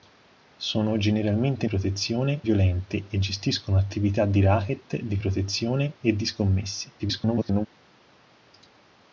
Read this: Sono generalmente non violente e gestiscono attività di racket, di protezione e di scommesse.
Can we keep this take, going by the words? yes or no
no